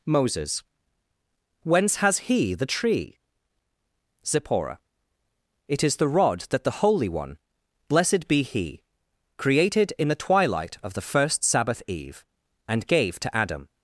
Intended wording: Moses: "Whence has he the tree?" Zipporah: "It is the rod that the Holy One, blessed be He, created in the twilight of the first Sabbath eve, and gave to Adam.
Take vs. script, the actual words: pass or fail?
pass